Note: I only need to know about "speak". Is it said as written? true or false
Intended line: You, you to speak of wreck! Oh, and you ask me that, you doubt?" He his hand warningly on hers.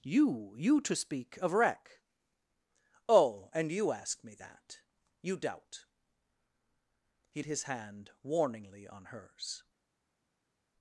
true